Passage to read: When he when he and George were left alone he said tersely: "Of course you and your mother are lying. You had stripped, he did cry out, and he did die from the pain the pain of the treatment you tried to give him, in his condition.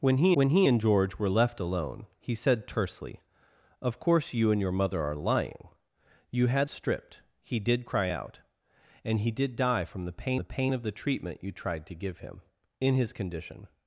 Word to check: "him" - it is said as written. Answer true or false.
true